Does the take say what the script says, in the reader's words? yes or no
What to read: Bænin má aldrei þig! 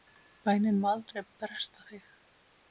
no